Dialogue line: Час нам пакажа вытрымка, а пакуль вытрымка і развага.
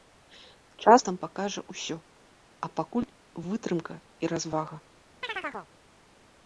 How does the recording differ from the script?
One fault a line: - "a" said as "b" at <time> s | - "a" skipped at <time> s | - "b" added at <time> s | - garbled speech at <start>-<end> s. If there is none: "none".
- "вытрымка" said as "ўсё" at 1.7 s